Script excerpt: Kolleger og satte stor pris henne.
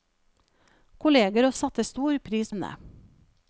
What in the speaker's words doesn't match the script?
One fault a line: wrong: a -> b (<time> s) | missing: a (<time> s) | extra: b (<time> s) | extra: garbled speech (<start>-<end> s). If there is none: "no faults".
no faults